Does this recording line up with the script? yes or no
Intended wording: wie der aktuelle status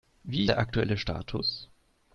yes